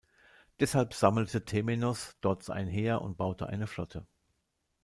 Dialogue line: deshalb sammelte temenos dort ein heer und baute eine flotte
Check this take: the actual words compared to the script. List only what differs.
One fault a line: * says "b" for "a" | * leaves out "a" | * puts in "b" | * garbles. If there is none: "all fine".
all fine